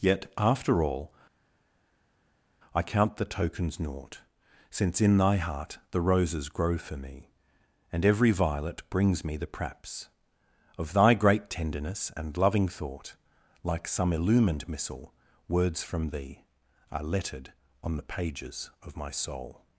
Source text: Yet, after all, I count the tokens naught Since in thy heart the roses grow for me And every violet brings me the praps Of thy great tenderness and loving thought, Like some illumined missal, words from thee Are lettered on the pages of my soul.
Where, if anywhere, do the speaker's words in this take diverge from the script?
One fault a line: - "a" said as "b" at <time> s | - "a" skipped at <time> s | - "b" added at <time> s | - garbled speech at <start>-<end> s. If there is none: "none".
none